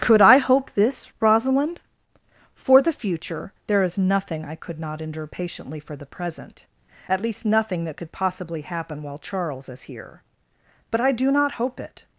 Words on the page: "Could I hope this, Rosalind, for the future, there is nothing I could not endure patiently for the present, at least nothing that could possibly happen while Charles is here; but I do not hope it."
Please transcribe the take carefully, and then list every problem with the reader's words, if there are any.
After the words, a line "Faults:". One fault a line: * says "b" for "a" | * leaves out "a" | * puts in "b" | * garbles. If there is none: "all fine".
"Could I hope this, Rosalind, for the future, there is nothing I could not endure patiently for the present, at least nothing that could possibly happen while Charles is here; but I do not hope it."
Faults:
all fine